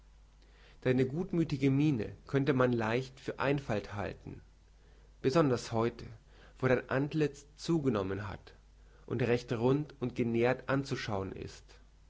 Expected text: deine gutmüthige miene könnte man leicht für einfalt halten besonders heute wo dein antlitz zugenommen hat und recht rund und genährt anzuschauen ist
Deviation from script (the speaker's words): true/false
false